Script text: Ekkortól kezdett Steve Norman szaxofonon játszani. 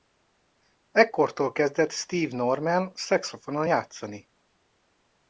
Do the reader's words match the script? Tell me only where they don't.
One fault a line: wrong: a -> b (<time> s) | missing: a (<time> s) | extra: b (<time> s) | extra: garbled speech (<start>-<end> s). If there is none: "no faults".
no faults